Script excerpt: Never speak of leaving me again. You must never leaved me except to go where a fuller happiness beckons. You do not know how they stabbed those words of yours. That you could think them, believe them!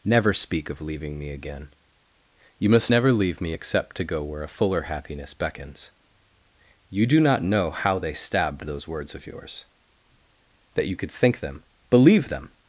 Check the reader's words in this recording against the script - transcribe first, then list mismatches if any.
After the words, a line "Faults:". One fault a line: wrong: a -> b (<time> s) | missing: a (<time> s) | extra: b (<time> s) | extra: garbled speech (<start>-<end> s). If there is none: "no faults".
Never speak of leaving me again. You must never leave me except to go where a fuller happiness beckons. You do not know how they stabbed those words of yours. That you could think them, believe them!
Faults:
wrong: leaved -> leave (3.1 s)